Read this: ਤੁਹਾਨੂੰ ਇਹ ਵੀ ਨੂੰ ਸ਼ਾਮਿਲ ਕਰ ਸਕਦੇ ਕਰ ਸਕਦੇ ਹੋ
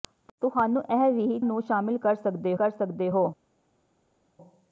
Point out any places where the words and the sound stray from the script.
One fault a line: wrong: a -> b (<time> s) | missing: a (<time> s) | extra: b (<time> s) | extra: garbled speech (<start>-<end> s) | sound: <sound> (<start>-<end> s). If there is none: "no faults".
no faults